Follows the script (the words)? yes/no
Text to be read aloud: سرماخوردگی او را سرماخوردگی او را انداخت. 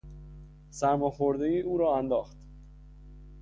no